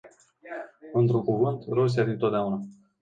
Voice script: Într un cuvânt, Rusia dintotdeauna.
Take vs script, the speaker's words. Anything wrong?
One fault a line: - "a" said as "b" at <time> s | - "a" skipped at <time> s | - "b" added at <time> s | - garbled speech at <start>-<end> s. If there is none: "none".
none